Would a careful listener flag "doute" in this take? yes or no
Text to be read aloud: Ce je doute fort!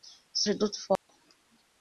no